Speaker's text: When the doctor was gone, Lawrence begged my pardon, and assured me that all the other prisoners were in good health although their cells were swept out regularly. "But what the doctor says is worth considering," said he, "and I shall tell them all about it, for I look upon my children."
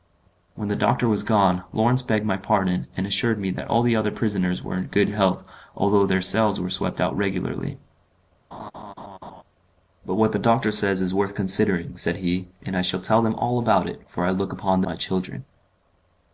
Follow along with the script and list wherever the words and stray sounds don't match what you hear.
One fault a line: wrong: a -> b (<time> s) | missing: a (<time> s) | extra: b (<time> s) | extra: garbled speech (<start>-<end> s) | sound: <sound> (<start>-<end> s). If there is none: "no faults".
sound: laugh (8.5-9.4 s)